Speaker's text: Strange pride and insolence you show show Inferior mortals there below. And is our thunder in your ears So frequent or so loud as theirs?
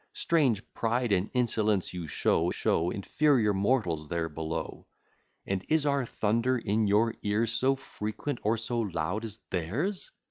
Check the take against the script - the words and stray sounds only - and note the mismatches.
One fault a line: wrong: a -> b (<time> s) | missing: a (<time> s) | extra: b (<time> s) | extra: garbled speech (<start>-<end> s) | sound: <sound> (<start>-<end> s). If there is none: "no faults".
no faults